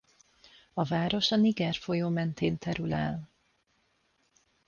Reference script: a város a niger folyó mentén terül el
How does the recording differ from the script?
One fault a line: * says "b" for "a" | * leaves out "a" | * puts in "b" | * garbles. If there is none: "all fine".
all fine